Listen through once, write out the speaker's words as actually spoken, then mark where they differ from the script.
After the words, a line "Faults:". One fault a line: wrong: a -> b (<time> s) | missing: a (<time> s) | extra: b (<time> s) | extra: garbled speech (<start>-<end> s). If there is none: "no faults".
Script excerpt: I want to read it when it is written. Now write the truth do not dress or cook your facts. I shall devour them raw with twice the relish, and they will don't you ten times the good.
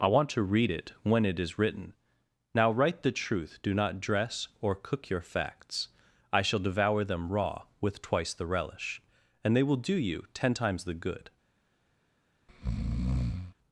I want to read it when it is written. Now write the truth do not dress or cook your facts. I shall devour them raw with twice the relish, and they will do you ten times the good.
Faults:
wrong: don't -> do (9.8 s)